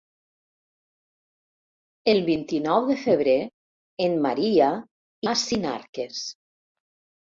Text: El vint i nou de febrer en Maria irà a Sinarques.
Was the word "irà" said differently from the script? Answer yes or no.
yes